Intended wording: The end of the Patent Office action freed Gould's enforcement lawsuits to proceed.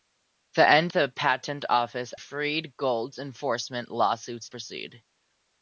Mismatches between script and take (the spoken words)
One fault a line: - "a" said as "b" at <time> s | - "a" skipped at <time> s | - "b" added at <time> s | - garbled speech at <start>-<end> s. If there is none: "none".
- "of" skipped at 0.9 s
- "action" skipped at 2.1 s
- "to" skipped at 4.5 s